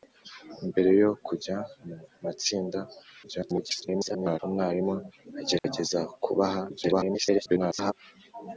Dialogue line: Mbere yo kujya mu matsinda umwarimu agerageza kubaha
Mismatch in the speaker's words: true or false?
true